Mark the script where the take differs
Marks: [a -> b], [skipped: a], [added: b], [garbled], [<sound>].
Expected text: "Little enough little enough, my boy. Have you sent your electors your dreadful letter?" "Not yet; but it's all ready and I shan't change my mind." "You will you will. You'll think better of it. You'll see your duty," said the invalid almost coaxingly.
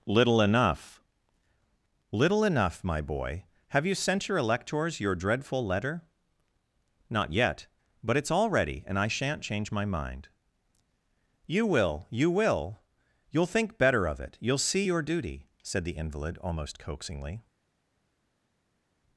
"Little enough little enough, my boy. Have you sent your electors your dreadful letter?" "Not yet; but it's all ready and I shan't change my mind." "You will you will. You'll think better of it. You'll see your duty," said the invalid almost coaxingly.